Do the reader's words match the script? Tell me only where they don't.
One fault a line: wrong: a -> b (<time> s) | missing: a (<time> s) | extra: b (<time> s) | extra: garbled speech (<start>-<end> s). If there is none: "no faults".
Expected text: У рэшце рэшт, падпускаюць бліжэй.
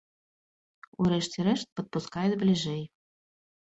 no faults